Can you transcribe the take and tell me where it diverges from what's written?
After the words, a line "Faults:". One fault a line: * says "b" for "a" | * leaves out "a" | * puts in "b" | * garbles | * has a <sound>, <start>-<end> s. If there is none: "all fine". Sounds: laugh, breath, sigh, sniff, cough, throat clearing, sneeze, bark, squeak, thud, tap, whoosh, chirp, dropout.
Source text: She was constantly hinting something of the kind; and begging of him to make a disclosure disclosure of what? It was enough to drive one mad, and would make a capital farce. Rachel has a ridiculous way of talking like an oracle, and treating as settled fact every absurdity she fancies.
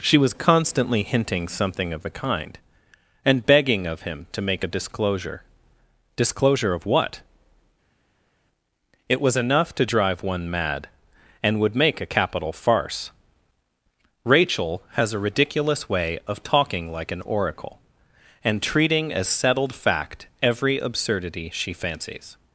She was constantly hinting something of the kind; and begging of him to make a disclosure disclosure of what? It was enough to drive one mad, and would make a capital farce. Rachel has a ridiculous way of talking like an oracle, and treating as settled fact every absurdity she fancies.
Faults:
all fine